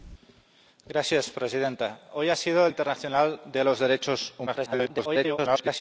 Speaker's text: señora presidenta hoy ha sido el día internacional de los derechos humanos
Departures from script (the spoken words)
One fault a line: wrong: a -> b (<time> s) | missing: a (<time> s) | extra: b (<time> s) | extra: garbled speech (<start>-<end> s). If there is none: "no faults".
missing: día (2.7 s)
extra: garbled speech (4.5-5.8 s)